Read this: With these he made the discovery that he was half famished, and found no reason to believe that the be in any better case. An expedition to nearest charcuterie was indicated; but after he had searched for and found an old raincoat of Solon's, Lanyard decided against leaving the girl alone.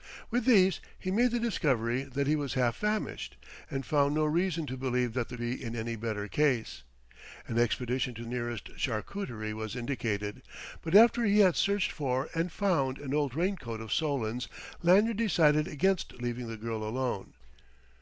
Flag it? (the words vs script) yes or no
no